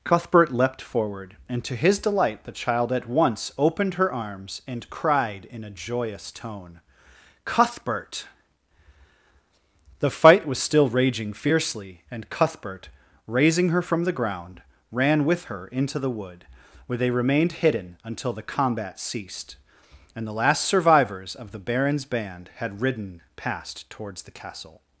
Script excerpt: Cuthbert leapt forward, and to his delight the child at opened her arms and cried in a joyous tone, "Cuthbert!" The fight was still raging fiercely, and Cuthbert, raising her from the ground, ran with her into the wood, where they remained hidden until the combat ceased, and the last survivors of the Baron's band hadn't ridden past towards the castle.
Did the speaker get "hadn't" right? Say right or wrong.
wrong